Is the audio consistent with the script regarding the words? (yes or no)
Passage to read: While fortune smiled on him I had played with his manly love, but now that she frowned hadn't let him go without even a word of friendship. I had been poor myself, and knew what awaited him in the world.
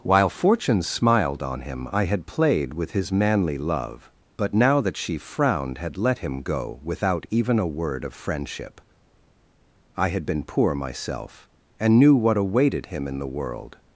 no